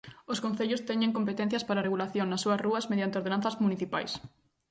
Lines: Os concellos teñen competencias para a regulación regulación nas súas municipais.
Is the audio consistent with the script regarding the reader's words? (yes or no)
no